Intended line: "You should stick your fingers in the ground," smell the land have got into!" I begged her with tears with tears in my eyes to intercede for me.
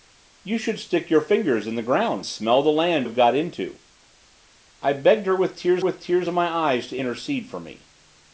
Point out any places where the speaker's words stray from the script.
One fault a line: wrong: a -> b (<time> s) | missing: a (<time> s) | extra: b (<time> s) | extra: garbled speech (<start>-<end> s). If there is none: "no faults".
no faults